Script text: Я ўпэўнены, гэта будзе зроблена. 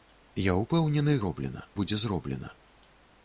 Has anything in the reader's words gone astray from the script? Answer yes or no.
yes